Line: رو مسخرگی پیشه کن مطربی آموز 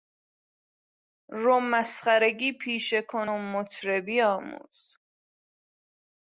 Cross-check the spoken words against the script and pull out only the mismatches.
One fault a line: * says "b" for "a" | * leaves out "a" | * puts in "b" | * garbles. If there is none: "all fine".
* puts in "و"